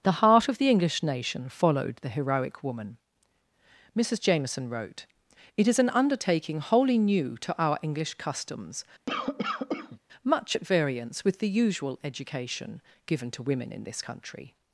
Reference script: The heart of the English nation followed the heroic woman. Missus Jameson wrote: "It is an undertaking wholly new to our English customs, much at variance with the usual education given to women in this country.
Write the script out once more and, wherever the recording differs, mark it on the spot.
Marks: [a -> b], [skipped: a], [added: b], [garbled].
The heart of the English nation followed the heroic woman. Missus Jameson wrote: "It is an undertaking wholly new to our English customs, much at variance with the usual education given to women in this country.